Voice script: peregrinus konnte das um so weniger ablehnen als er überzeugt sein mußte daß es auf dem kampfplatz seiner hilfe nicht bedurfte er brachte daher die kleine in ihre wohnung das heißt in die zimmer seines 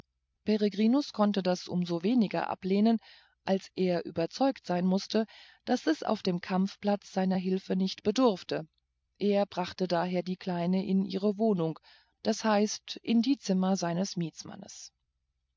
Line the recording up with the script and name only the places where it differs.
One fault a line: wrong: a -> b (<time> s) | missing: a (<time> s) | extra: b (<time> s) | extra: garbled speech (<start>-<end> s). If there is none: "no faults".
no faults